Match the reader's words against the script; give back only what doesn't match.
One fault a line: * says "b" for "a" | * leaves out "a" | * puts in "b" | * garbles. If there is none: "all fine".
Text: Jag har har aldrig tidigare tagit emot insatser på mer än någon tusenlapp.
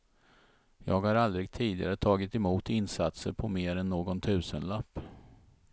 * leaves out "har"